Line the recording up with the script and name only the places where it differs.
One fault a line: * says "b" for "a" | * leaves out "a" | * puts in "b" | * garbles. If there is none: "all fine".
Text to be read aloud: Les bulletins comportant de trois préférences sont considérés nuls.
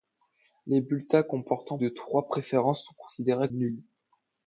all fine